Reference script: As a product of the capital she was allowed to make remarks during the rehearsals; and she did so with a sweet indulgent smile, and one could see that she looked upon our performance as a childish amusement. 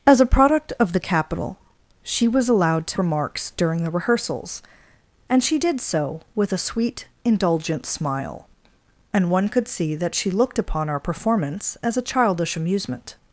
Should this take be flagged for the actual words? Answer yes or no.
yes